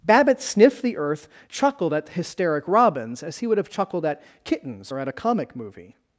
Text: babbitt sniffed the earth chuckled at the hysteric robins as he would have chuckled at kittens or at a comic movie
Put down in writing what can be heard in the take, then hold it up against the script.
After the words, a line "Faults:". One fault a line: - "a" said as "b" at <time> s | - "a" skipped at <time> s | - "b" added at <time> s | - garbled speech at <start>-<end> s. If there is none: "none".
babbitt sniffed the earth chuckled at hysteric robins as he would have chuckled at kittens or at a comic movie
Faults:
- "the" skipped at 2.1 s